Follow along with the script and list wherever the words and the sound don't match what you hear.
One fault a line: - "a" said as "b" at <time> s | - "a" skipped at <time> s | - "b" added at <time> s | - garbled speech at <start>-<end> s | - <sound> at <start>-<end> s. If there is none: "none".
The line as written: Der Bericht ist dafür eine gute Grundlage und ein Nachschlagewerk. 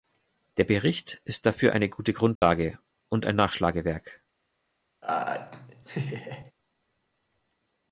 - dropout at 2.4-2.4 s
- laugh at 5.0-6.5 s